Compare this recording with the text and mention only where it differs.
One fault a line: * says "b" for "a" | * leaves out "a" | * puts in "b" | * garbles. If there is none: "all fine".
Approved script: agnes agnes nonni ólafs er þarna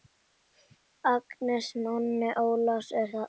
* leaves out "agnes"